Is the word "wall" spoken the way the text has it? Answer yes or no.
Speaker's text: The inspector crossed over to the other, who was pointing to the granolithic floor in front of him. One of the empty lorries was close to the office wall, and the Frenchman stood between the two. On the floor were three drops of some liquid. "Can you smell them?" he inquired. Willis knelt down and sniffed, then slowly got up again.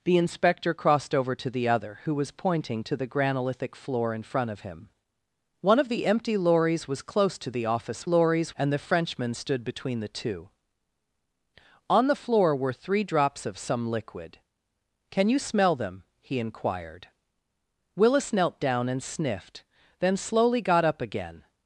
no